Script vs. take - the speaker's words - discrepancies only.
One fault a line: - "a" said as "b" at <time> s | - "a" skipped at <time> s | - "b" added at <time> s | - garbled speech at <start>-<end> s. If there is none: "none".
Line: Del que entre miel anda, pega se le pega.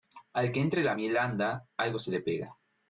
- "Del" said as "Al" at 0.3 s
- "la" added at 0.8 s
- "pega" said as "algo" at 1.8 s